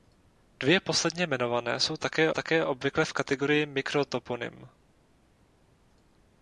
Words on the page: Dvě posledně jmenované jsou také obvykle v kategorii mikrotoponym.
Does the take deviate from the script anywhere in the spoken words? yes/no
yes